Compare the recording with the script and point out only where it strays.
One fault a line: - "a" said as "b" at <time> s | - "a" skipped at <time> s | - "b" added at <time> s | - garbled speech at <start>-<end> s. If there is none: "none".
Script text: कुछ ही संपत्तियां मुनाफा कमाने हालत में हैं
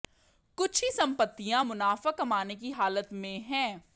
- "की" added at 2.5 s